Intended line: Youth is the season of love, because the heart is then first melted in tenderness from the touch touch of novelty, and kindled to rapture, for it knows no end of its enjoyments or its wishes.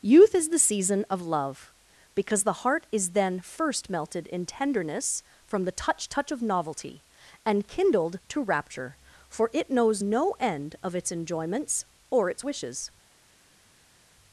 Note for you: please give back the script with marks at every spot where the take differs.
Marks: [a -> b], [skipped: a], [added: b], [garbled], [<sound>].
Youth is the season of love, because the heart is then first melted in tenderness from the touch touch of novelty, and kindled to rapture, for it knows no end of its enjoyments or its wishes.